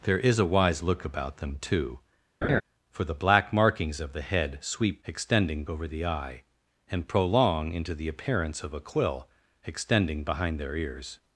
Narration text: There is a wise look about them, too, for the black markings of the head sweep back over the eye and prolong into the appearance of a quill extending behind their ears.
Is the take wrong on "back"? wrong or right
wrong